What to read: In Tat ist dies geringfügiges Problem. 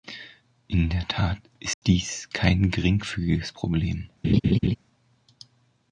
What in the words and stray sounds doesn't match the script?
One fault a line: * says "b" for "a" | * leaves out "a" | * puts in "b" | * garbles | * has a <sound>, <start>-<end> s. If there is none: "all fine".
* puts in "der"
* has a dropout, 1.7-1.8 s
* puts in "kein"
* has a laugh, 4.2-4.8 s